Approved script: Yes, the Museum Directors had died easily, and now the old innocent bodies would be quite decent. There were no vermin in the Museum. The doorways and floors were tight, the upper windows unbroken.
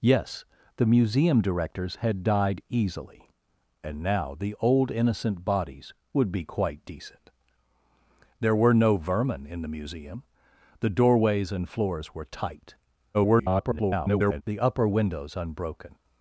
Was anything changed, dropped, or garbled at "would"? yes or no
no